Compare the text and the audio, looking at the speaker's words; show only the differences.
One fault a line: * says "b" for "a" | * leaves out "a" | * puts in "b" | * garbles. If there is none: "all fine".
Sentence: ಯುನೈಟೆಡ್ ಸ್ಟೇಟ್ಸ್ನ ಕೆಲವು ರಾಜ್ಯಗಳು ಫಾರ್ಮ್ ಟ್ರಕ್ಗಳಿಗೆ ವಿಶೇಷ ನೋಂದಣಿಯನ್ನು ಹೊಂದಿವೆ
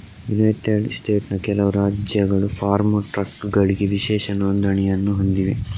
all fine